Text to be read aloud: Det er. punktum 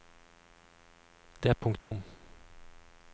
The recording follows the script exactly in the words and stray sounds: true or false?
false